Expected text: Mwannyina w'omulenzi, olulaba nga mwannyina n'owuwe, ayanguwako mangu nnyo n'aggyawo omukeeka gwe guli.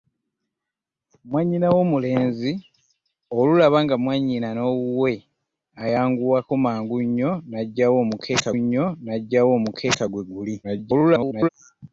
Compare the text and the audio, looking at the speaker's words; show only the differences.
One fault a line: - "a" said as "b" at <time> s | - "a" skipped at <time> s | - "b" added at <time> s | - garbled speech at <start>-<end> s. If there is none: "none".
- "nnyo n'aggyawo omukeeka" added at 8.6 s
- garbled speech at 10.6-11.5 s